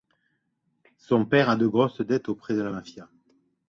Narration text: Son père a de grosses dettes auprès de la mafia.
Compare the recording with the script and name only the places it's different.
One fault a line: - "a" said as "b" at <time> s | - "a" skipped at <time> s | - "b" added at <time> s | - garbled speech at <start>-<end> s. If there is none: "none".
none